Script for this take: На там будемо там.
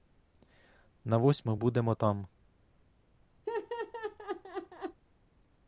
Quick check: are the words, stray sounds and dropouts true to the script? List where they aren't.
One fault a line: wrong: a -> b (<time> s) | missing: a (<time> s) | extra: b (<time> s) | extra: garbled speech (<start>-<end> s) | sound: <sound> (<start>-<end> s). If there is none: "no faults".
wrong: там -> восьму (1.2 s)
sound: laugh (3.4-5.0 s)